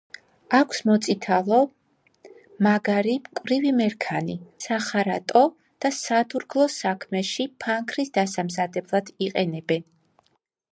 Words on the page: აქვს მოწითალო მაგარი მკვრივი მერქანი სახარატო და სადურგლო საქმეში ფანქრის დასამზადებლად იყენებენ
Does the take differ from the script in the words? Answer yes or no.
no